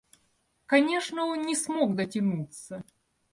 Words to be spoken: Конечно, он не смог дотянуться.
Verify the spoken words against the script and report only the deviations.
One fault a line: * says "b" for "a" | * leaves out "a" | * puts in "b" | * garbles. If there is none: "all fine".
all fine